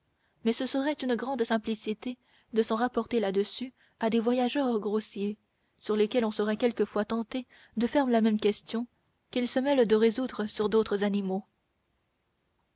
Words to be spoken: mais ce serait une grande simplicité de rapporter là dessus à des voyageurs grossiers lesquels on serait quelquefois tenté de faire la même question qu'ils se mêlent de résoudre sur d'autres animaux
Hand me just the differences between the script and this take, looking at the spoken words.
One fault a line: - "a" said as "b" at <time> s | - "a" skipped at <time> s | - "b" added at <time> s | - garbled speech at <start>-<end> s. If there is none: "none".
- "s'en" added at 2.6 s
- "sur" added at 5.8 s